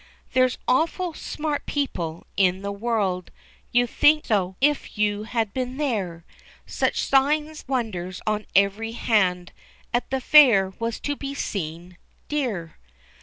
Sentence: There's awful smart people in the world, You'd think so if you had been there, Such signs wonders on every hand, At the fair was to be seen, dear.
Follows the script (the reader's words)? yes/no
yes